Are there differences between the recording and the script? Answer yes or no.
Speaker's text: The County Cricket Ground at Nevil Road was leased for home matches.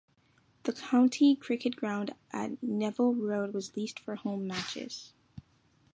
no